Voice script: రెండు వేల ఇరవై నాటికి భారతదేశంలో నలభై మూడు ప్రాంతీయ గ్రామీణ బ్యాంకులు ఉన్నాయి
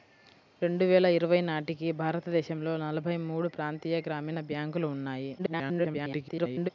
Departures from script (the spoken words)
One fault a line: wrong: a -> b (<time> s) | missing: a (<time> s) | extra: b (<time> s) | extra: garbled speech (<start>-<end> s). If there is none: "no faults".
extra: garbled speech (5.4-6.7 s)